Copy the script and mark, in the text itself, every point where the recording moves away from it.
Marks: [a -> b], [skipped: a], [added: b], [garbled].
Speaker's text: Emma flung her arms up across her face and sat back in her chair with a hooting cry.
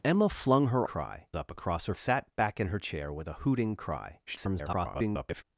Emma flung her [arms -> cry] up across her [skipped: face and] sat back in her chair with a hooting cry. [garbled]